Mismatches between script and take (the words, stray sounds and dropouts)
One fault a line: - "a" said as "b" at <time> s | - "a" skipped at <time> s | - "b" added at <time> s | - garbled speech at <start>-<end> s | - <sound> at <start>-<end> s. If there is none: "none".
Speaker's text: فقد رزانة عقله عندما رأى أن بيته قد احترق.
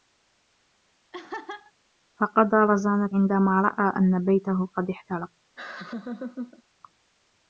- laugh at 1.1-1.7 s
- "عقله" skipped at 3.1 s
- laugh at 5.6-6.6 s